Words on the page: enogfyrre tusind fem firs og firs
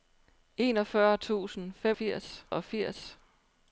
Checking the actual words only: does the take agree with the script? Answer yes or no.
yes